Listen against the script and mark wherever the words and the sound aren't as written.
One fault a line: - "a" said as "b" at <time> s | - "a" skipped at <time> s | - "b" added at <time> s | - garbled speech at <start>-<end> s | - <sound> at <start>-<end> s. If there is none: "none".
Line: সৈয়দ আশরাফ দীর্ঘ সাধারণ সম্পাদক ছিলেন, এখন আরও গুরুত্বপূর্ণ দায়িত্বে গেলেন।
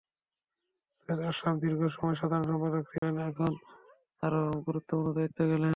- "সময়" added at 1.9 s
- dropout at 3.0-3.0 s